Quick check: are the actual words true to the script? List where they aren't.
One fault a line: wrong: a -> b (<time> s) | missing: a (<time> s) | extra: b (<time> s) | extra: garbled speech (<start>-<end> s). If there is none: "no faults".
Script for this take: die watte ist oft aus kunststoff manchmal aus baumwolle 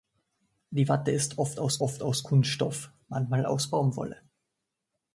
extra: oft aus (1.8 s)